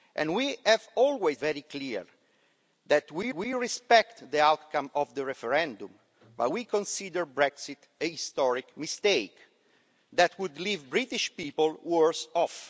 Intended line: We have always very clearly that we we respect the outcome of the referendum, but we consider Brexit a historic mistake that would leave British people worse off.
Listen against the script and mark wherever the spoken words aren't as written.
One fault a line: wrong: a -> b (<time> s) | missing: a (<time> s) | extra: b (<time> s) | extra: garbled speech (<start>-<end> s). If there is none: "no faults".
no faults